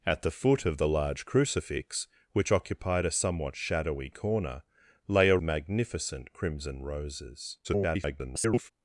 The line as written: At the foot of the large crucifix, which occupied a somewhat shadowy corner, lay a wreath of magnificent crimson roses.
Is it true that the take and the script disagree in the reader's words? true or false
true